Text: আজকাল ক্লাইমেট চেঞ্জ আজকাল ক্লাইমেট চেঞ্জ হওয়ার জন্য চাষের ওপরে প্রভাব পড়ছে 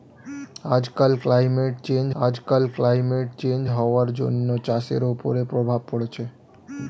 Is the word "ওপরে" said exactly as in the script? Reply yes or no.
yes